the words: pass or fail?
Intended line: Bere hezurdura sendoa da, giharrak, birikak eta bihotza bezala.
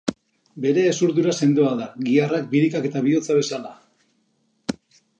pass